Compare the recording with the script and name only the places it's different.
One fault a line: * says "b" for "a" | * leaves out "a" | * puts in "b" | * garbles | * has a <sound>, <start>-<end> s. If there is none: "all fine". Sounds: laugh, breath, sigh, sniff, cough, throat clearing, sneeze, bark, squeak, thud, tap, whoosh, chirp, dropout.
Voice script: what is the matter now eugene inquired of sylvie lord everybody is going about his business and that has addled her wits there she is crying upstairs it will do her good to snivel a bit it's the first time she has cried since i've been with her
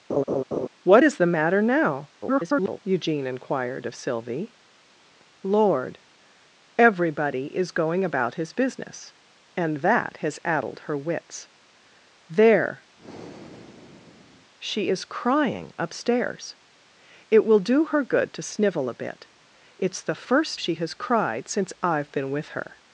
* has a laugh, 0.1-0.7 s
* garbles
* has a breath, 13.0-14.5 s
* leaves out "time"